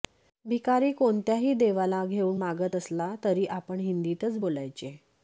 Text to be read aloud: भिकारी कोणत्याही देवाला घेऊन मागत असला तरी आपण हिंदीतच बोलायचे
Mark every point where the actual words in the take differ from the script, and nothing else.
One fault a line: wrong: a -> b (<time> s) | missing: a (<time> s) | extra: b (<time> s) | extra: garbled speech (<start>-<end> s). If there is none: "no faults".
no faults